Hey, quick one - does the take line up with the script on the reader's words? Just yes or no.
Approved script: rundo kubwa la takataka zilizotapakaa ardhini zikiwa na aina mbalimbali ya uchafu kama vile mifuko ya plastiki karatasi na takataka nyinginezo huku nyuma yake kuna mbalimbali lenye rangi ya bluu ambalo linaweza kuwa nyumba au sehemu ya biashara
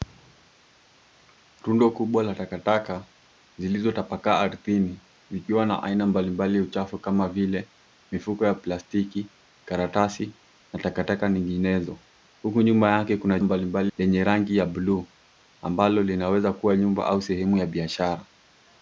yes